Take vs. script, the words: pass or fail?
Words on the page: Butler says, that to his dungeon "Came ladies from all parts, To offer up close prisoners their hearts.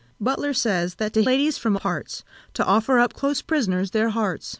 fail